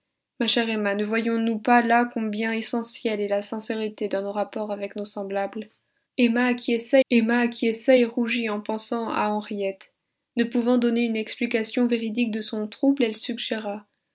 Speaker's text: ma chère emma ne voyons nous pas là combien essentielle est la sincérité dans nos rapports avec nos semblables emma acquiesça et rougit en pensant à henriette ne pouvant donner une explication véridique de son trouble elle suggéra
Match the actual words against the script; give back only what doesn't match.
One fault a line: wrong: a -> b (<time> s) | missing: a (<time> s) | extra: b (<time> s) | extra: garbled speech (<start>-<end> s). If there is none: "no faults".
extra: emma acquiesça (7.1 s)